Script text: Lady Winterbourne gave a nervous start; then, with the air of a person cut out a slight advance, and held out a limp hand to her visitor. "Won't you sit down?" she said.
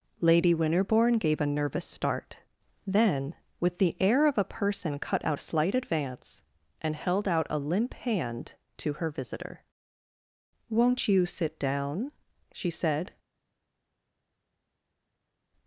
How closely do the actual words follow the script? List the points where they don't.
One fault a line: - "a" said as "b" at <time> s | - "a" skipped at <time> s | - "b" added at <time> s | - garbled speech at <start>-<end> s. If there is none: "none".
none